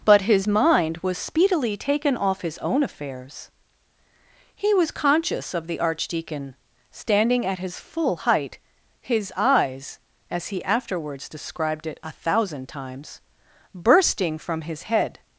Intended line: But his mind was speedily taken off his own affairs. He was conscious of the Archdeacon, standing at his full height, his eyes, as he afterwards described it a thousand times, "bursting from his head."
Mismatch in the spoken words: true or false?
false